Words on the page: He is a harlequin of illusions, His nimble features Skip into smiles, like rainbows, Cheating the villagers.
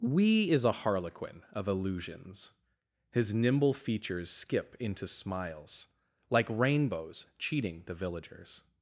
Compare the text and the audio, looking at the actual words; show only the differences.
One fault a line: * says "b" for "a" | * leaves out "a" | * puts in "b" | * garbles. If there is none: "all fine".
* says "We" for "He"